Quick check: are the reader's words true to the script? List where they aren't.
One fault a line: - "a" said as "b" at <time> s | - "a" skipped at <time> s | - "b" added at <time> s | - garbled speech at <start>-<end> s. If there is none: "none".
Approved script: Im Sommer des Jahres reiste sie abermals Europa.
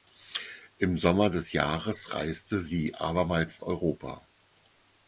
none